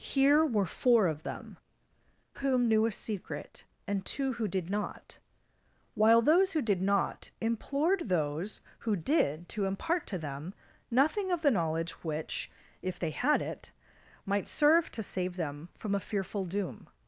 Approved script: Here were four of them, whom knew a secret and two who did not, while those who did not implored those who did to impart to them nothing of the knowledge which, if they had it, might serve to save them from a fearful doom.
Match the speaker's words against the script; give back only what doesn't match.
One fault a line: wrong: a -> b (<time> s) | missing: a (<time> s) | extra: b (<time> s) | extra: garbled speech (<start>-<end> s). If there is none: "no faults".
no faults